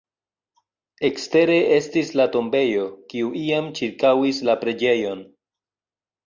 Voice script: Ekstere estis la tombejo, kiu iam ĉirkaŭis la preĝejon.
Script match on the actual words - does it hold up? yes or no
yes